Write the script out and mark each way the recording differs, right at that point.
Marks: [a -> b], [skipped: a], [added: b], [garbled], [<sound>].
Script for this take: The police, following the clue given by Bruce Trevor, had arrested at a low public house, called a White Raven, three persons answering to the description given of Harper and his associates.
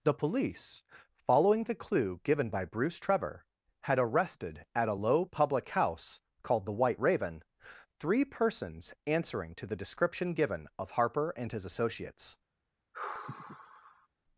The police, following the clue given by Bruce Trevor, had arrested at a low public house, called [a -> the] White Raven, three persons answering to the description given of Harper and his associates. [sigh]